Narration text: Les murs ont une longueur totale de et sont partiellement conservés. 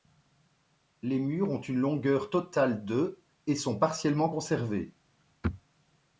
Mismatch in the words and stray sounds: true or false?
false